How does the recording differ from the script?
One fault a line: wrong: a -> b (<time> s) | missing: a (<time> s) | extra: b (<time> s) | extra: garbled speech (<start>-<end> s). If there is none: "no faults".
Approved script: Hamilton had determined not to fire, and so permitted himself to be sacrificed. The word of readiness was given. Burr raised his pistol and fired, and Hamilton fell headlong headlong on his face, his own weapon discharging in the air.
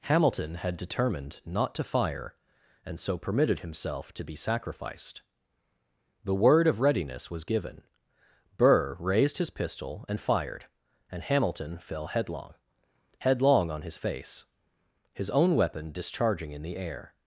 no faults